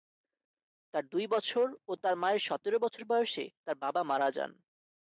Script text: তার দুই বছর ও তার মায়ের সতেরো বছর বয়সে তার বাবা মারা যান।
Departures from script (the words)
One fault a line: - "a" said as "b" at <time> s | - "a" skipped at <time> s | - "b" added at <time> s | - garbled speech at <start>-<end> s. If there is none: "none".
none